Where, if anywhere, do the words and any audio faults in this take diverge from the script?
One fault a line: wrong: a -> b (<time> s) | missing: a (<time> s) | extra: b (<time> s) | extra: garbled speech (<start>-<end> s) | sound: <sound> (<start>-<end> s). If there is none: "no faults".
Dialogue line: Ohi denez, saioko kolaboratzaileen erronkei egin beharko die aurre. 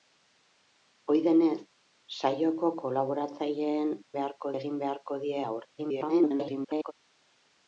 wrong: erronkei -> beharko (4.2 s)
extra: garbled speech (5.8-6.9 s)